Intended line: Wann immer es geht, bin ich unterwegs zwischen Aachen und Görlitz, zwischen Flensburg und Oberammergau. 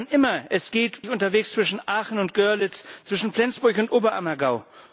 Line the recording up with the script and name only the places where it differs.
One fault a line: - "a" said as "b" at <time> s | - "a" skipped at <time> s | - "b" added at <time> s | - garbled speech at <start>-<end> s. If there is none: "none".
- "bin" skipped at 1.0 s